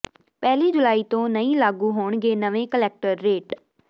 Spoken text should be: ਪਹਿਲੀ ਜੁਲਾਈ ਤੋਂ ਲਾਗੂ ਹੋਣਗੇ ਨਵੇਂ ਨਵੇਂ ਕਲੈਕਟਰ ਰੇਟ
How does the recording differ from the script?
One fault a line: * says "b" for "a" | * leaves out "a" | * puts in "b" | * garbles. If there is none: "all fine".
* puts in "ਨਹੀਂ"
* leaves out "ਨਵੇਂ"